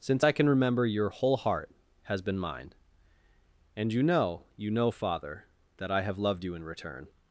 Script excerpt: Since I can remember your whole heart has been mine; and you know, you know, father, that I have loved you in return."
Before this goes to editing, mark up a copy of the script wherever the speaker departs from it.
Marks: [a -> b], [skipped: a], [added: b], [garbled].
Since I can remember your whole heart has been mine; and you know, you know, father, that I have loved you in return."